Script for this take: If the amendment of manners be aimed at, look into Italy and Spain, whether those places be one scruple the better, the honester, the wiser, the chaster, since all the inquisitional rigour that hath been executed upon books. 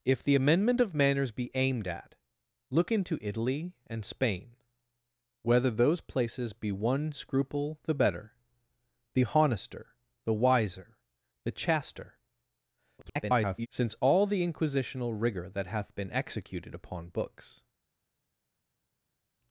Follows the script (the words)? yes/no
no